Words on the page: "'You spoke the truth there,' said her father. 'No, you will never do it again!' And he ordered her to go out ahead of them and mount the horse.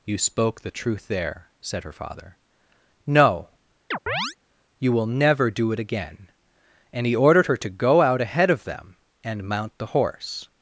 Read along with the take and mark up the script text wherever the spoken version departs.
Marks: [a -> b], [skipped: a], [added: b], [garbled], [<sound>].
"'You spoke the truth there,' said her father. 'No, [chirp] you will never do it again!' And he ordered her to go out ahead of them and mount the horse.